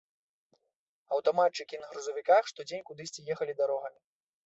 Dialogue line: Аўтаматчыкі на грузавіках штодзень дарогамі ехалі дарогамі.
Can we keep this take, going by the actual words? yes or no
no